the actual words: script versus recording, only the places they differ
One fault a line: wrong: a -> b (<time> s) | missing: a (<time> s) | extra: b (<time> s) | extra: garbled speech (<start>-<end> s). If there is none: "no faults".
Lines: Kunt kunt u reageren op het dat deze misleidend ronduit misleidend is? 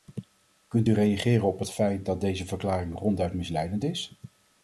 missing: kunt (0.9 s)
extra: feit (1.7 s)
wrong: misleidend -> verklaring (2.4 s)